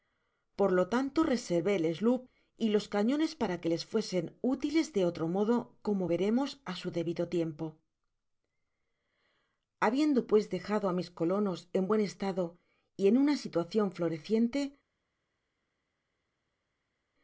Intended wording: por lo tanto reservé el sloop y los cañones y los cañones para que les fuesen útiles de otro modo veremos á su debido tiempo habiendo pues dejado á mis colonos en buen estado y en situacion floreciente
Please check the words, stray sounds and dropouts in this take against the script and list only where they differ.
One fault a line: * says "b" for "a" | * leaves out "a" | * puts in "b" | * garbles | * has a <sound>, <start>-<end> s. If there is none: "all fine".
* leaves out "y los cañones"
* puts in "como"
* puts in "una"